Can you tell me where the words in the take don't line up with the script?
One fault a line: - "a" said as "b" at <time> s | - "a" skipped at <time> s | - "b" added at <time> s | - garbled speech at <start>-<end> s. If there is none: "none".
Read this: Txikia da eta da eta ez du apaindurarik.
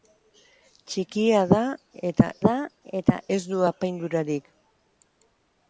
none